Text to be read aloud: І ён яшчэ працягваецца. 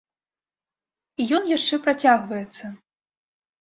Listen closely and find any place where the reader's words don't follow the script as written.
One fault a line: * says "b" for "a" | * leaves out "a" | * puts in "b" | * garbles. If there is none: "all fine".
all fine